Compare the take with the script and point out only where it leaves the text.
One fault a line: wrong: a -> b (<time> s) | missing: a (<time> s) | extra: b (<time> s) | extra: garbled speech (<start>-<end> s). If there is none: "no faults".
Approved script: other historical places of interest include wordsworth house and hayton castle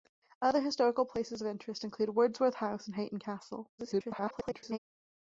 extra: garbled speech (3.8-4.8 s)